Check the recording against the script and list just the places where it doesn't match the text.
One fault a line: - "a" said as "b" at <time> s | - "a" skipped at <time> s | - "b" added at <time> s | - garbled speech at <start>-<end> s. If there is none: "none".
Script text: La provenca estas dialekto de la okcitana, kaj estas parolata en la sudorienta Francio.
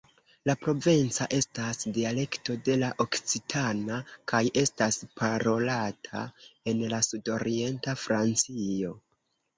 none